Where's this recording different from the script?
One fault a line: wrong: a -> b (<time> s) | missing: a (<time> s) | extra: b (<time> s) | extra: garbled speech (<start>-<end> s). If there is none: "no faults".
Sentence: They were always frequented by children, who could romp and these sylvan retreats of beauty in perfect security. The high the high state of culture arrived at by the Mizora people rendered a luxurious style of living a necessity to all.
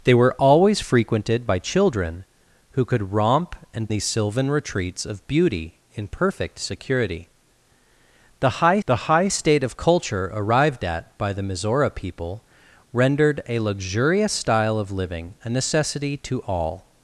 no faults